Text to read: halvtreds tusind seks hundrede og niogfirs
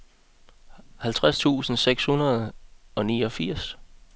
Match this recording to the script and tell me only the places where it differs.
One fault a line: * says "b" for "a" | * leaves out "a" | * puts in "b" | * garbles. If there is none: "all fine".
all fine